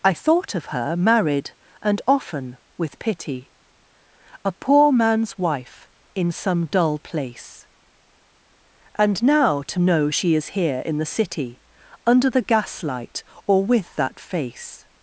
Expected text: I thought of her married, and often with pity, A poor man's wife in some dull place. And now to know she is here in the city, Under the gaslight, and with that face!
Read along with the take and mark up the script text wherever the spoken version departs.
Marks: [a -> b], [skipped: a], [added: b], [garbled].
I thought of her married, and often with pity, A poor man's wife in some dull place. And now to know she is here in the city, Under the gaslight, [and -> or] with that face!